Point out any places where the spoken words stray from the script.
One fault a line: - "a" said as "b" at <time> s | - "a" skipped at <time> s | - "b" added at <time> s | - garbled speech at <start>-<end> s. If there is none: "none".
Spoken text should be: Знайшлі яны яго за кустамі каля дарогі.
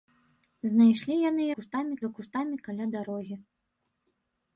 - "яго" said as "кустамі" at 1.6 s